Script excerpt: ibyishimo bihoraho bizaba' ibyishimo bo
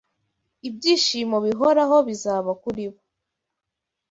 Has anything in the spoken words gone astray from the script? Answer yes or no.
yes